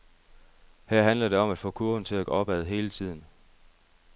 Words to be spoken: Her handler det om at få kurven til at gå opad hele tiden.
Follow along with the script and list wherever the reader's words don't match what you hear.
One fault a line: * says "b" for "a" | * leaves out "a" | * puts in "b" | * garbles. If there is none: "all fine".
all fine